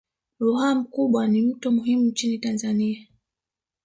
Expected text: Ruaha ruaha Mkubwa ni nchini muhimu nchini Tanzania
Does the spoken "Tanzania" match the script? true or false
true